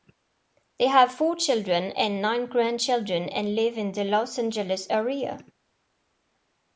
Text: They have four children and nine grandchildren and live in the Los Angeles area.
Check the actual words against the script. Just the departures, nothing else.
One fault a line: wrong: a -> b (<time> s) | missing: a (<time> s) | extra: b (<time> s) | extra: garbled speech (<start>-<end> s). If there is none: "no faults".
no faults